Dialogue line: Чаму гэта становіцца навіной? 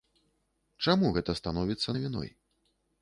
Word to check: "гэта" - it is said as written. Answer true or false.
true